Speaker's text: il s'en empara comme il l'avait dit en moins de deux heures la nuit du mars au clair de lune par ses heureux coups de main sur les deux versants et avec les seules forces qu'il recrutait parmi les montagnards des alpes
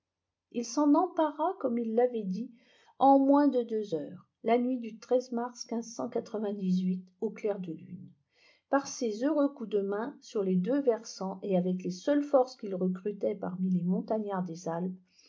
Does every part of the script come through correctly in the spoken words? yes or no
yes